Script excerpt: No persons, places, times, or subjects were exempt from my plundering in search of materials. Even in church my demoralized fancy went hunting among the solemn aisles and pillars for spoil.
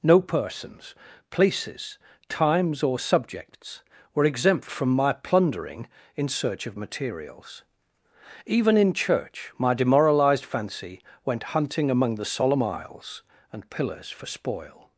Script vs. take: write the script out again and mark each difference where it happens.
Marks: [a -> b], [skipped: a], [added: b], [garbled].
No persons, places, times, or subjects were exempt from my plundering in search of materials. Even in church my demoralized fancy went hunting among the solemn aisles and pillars for spoil.